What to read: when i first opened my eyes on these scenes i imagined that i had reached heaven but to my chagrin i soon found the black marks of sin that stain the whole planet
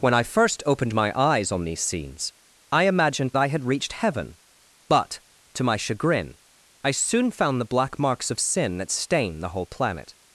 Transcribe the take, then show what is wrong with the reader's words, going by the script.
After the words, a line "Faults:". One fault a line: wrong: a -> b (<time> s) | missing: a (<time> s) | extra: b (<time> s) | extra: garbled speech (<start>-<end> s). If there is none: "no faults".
when i first opened my eyes on these scenes i imagined i had reached heaven but to my chagrin i soon found the black marks of sin that stain the whole planet
Faults:
missing: that (3.3 s)